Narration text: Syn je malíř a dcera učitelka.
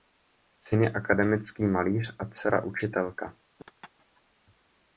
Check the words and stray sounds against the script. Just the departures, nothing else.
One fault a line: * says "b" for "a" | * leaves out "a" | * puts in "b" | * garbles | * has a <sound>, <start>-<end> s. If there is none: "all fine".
* puts in "akademický"
* has a laugh, 3.6-4.2 s